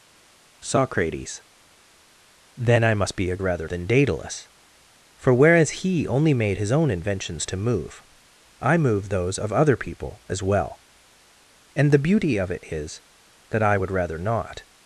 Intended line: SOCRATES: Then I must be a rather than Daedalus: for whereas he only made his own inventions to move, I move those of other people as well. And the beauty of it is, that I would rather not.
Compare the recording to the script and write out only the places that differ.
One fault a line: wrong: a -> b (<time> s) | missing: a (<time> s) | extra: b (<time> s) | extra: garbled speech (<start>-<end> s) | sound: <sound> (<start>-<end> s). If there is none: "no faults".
no faults